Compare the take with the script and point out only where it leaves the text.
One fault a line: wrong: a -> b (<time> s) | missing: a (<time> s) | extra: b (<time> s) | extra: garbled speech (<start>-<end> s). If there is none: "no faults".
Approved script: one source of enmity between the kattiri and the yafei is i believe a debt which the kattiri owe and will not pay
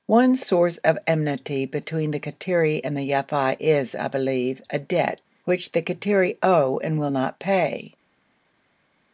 no faults